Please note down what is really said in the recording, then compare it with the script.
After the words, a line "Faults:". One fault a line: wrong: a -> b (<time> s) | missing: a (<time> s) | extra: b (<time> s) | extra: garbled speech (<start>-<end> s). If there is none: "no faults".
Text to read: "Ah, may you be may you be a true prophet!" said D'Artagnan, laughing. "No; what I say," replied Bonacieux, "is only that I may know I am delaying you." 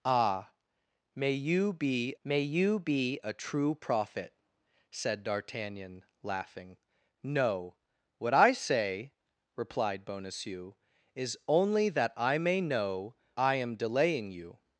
"Ah, may you be may you be a true prophet!" said D'Artagnan, laughing. "No; what I say," replied Bonacieux, "is only that I may know I am delaying you."
Faults:
no faults